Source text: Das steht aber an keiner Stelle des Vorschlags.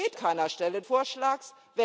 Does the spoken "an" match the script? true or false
false